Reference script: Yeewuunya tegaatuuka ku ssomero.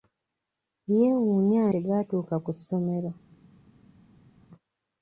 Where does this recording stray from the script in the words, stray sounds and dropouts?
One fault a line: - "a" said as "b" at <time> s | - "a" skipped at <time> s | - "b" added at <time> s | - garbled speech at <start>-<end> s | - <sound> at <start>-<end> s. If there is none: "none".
none